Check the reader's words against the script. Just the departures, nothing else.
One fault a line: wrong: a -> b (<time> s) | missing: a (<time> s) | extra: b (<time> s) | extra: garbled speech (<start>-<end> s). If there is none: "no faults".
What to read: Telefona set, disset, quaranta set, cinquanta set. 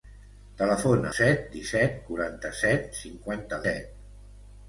no faults